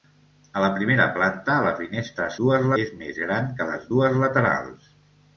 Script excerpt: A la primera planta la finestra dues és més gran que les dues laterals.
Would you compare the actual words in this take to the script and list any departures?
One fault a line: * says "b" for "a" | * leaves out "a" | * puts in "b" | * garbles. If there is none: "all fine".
all fine